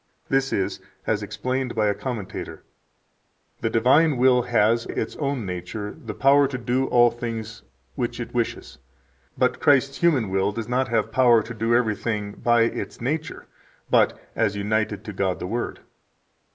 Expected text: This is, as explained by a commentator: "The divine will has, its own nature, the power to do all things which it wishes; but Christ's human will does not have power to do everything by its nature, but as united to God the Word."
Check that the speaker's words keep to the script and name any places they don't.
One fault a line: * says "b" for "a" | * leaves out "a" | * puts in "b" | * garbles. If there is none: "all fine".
all fine